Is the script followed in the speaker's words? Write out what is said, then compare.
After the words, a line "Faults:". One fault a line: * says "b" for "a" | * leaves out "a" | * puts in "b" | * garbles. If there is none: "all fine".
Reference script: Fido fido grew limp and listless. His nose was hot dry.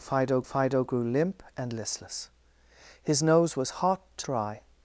Fido fido grew limp and listless. His nose was hot dry.
Faults:
all fine